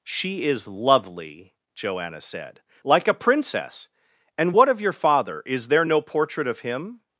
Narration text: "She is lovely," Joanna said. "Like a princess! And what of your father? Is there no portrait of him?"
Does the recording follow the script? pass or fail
pass